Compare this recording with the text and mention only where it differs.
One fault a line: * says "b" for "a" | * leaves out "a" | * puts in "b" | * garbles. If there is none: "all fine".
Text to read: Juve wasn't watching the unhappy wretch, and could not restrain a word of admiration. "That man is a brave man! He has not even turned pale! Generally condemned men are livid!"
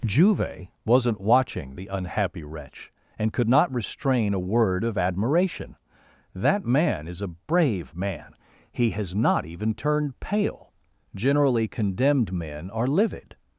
all fine